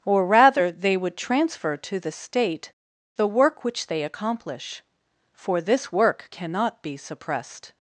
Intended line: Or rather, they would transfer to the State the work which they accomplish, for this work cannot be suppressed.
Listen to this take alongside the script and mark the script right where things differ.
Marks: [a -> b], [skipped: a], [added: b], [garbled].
Or rather, they would transfer to the State the work which they accomplish, for this work cannot be suppressed.